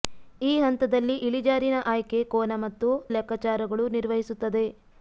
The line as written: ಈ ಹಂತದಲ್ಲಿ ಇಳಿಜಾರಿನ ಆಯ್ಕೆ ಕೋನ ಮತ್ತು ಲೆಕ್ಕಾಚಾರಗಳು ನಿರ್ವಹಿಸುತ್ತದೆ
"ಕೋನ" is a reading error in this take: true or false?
false